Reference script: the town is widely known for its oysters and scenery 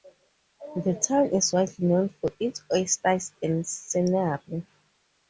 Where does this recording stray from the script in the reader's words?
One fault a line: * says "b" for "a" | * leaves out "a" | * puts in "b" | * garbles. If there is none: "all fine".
all fine